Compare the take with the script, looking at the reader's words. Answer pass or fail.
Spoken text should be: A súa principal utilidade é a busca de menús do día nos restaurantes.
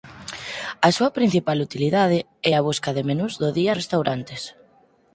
fail